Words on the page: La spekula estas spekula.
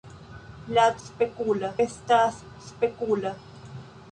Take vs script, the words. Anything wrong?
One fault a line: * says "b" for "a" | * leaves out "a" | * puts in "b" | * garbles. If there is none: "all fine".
all fine